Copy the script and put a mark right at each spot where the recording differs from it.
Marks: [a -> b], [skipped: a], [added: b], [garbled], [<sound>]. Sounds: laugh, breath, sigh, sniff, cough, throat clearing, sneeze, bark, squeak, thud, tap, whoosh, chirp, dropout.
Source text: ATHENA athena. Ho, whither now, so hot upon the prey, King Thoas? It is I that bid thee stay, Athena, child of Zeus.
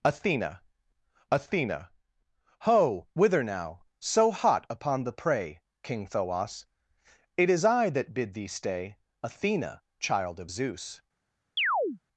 ATHENA athena. Ho, whither now, so hot upon the prey, King Thoas? It is I that bid thee stay, Athena, child of Zeus. [chirp]